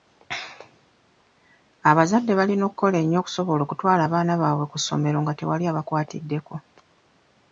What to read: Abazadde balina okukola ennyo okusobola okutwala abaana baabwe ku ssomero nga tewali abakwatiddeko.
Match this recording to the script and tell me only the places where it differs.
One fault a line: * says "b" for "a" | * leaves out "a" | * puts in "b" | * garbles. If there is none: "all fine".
all fine